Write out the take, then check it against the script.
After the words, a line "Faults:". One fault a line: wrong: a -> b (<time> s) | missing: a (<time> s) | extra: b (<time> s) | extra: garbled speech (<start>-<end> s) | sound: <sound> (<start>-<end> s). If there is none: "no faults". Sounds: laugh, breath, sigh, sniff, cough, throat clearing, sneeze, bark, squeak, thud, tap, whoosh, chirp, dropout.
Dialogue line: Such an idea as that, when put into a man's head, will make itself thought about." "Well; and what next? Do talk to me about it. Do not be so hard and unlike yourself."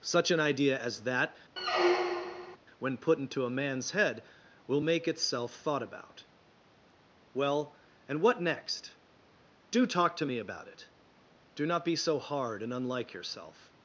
Such an idea as that, when put into a man's head, will make itself thought about." "Well; and what next? Do talk to me about it. Do not be so hard and unlike yourself."
Faults:
sound: squeak (1.6-2.6 s)